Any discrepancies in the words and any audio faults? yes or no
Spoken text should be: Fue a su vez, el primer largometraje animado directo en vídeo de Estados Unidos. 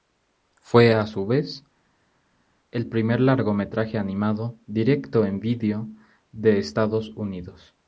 no